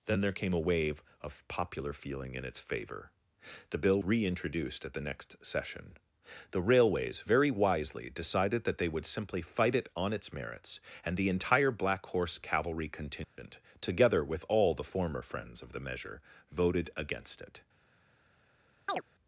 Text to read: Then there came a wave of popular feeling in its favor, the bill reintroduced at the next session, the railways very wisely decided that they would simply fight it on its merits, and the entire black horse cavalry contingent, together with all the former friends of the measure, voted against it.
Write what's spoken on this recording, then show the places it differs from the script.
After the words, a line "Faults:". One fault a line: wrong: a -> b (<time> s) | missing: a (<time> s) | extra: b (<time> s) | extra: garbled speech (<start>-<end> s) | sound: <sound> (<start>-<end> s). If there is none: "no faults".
Then there came a wave of popular feeling in its favor, the bill reintroduced at the next session, the railways very wisely decided that they would simply fight it on its merits, and the entire black horse cavalry contingent, together with all the former friends of the measure, voted against it.
Faults:
sound: dropout (13.2-13.4 s)
sound: chirp (18.9-19.0 s)